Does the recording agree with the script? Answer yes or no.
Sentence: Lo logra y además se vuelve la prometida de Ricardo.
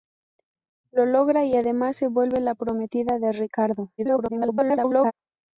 no